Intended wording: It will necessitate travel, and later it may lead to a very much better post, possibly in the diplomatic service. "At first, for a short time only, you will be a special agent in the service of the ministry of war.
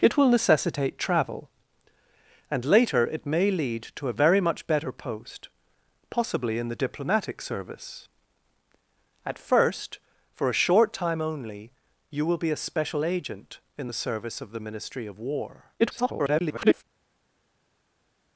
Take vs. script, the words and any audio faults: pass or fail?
fail